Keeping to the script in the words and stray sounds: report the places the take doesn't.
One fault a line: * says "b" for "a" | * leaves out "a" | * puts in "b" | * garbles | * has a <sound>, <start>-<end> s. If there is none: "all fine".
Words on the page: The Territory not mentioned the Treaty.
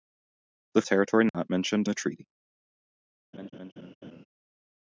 * has a dropout, 1.3-1.3 s
* has a laugh, 3.3-4.3 s